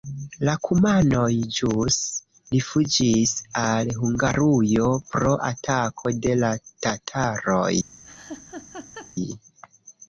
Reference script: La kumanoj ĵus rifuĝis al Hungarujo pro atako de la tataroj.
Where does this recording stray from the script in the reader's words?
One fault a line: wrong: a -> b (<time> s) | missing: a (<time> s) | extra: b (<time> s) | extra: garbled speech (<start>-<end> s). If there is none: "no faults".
no faults